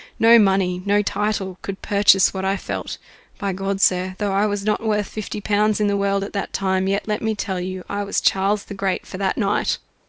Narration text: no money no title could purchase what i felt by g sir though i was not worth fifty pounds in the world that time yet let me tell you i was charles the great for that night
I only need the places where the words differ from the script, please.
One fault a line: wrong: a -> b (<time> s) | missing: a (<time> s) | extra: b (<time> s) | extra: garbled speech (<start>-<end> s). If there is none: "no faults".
extra: at (6.2 s)